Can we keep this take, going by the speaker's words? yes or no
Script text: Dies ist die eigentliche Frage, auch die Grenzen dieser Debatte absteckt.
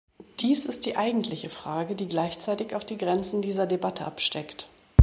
no